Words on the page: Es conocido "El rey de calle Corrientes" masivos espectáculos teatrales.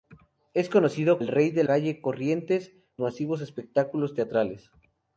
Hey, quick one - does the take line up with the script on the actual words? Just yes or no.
yes